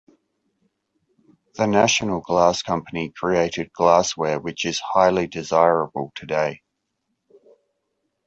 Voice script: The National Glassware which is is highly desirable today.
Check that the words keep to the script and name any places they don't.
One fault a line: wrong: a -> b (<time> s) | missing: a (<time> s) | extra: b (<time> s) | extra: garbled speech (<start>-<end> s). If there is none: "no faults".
extra: Glass Company created (2.2 s)
missing: is (4.8 s)